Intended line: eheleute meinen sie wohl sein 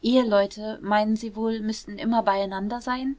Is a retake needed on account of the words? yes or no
yes